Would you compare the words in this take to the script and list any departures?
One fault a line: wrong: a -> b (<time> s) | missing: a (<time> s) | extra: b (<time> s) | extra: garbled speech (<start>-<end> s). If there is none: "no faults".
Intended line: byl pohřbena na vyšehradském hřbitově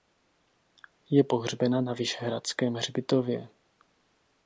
wrong: byl -> je (1.1 s)